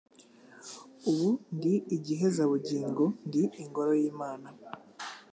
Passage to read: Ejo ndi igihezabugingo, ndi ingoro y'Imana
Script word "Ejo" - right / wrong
wrong